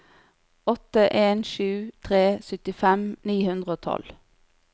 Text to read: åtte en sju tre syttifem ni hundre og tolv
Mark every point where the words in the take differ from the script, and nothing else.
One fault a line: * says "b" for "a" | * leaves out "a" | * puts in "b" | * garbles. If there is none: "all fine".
all fine